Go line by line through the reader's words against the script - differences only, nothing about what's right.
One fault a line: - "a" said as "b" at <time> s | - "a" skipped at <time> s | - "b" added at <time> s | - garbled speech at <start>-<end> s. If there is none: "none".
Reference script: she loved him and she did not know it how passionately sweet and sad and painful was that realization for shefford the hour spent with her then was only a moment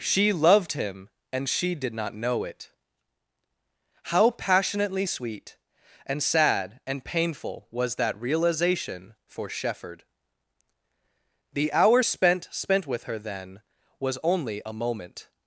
- "spent" added at 12.5 s